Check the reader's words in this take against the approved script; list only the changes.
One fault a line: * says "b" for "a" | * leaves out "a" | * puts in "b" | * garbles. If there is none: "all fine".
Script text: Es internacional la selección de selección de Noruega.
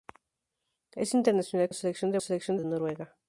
all fine